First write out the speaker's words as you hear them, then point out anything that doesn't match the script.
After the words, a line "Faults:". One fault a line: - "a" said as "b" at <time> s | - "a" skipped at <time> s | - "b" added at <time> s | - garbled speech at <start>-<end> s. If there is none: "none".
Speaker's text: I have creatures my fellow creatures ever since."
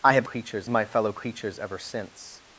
I have creatures my fellow creatures ever since."
Faults:
none